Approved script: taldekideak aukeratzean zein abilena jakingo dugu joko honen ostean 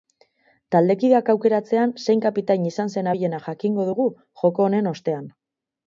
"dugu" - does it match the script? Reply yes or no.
yes